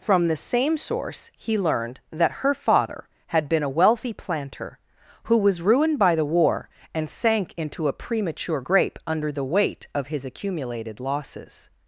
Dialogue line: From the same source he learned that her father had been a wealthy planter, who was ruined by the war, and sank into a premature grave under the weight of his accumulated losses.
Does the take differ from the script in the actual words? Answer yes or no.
yes